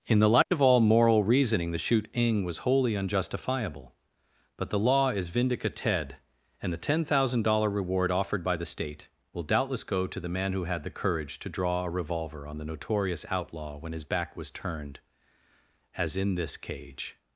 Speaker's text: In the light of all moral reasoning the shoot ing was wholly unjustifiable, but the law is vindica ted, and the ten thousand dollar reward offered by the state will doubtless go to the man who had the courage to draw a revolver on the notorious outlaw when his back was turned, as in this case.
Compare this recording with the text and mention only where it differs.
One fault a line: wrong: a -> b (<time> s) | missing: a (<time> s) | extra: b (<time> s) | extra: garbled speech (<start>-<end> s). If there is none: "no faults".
wrong: case -> cage (16.6 s)